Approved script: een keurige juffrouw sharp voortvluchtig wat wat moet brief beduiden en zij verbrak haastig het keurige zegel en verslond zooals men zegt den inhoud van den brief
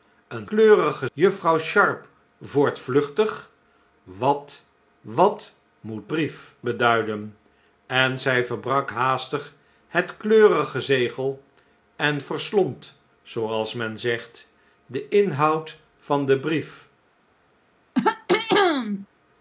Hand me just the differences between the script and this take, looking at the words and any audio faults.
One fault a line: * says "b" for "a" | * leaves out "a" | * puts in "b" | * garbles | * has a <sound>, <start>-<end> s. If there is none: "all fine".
* has a throat clearing, 17.9-19.1 s